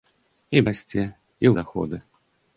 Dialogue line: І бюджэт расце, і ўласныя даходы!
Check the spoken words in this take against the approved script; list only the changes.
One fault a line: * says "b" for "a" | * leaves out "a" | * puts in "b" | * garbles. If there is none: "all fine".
* leaves out "бюджэт"
* leaves out "ўласныя"